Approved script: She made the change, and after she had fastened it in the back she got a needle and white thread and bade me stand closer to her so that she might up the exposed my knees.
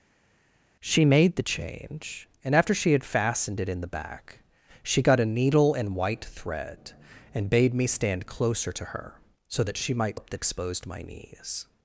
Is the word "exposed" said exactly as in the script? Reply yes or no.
yes